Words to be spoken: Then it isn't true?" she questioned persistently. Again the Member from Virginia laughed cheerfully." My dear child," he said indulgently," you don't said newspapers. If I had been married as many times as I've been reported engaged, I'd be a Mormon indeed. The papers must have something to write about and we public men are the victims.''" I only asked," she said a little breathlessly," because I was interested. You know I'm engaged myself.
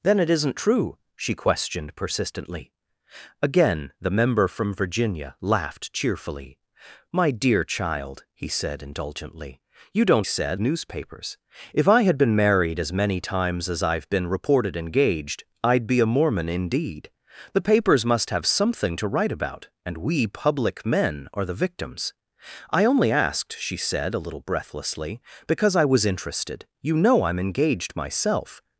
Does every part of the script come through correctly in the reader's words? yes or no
yes